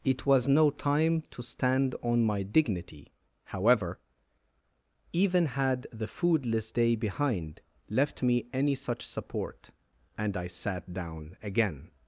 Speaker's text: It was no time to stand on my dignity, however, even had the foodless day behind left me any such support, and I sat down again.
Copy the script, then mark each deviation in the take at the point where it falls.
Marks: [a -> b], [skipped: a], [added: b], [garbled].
It was no time to stand on my dignity, however, even had the foodless day behind left me any such support, and I sat down again.